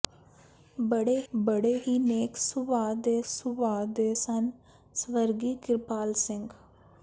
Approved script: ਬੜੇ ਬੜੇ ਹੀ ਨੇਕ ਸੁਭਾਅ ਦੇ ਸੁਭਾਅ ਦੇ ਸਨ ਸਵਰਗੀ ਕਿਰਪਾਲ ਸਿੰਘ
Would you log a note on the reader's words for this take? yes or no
no